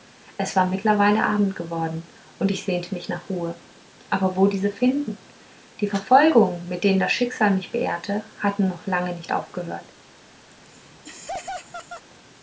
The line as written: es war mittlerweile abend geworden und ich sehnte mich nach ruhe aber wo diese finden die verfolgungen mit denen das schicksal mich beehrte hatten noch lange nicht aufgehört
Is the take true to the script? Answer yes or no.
yes